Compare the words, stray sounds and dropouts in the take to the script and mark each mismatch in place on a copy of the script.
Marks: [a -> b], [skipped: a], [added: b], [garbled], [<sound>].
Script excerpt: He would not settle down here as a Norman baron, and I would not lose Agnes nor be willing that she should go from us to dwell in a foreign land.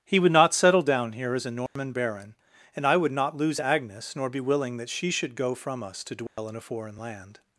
He would not settle down here as a Norman [dropout] baron, and I would not lose Agnes nor be willing that she should go from us to dwell [dropout] in a foreign land.